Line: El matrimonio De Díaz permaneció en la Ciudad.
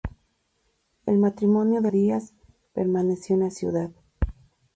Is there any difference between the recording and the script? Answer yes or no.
no